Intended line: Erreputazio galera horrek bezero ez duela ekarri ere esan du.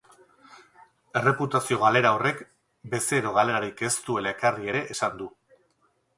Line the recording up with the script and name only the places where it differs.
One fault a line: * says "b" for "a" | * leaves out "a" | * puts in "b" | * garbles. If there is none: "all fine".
* puts in "galerarik"